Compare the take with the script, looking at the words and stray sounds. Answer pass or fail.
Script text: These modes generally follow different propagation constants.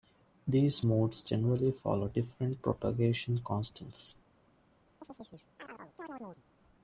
fail